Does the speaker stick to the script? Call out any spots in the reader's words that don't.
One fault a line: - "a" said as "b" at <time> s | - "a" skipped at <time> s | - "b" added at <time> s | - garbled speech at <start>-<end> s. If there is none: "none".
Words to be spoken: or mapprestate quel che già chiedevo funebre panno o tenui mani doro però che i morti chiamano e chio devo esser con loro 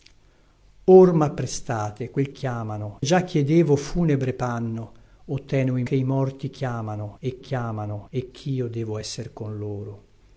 - "che" said as "chiamano" at 2.3 s
- "mani doro però" skipped at 5.8 s
- "chiamano e" added at 7.4 s